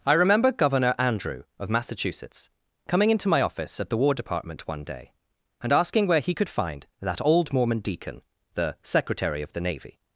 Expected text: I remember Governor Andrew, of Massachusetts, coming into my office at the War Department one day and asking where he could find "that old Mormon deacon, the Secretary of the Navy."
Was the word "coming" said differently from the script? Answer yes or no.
no